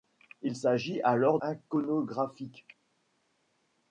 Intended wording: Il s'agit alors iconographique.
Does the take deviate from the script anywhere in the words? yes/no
no